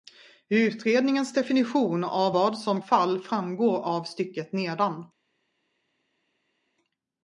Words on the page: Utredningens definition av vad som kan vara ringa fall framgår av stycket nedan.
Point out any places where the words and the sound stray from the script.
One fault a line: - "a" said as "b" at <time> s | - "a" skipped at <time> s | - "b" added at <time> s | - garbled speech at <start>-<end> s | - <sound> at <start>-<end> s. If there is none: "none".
- "kan vara ringa" skipped at 2.8 s